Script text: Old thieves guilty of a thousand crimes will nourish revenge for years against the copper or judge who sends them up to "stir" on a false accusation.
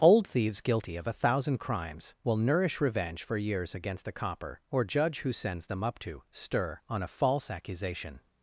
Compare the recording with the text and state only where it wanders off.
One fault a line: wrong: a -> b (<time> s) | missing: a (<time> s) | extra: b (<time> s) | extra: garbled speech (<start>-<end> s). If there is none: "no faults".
no faults